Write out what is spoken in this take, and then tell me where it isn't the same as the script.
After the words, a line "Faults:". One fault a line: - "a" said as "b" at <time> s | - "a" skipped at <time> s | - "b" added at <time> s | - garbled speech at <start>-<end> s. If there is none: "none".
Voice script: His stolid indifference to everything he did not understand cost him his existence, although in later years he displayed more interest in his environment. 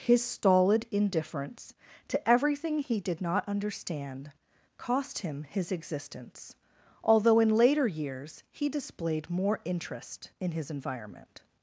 His stolid indifference to everything he did not understand cost him his existence, although in later years he displayed more interest in his environment.
Faults:
none